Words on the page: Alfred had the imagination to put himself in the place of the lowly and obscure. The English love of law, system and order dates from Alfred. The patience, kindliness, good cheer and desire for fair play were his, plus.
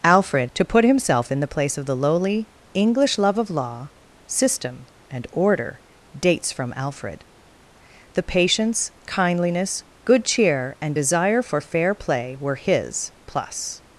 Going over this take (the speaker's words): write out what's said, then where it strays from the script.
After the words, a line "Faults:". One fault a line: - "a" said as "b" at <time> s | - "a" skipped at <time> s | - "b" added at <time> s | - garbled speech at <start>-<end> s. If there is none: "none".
Alfred to put himself in the place of the lowly English love of law, system and order dates from Alfred. The patience, kindliness, good cheer and desire for fair play were his, plus.
Faults:
- "had the imagination" skipped at 0.5 s
- "and obscure The" skipped at 2.5 s